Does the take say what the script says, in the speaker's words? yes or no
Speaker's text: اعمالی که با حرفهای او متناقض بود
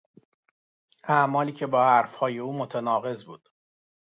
yes